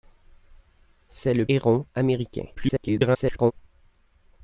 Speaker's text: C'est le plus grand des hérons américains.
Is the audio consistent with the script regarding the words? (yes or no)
no